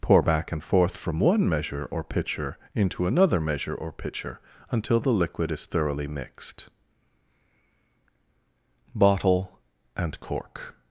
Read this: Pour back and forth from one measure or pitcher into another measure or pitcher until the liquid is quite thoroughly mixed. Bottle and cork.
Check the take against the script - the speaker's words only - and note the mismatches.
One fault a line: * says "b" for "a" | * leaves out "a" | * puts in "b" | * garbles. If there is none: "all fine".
* leaves out "quite"